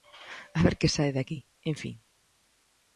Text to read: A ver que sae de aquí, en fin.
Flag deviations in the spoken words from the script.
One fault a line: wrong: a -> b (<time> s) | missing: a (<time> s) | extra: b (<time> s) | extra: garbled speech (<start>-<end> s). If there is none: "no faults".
no faults